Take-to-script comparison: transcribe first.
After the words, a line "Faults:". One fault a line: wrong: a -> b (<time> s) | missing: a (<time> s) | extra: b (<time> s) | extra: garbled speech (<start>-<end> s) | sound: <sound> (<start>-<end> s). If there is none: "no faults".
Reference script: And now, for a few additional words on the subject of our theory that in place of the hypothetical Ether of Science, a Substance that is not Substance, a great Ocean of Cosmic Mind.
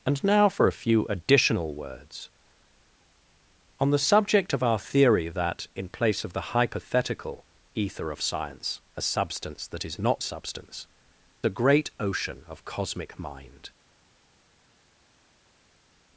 And now, for a few additional words on the subject of our theory that in place of the hypothetical Ether of Science, a Substance that is not Substance, a great Ocean of Cosmic Mind.
Faults:
no faults